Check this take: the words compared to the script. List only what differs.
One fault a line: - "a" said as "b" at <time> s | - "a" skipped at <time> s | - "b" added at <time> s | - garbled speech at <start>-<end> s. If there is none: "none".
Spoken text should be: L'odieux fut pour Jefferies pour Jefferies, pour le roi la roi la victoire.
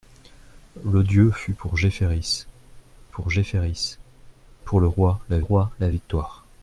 none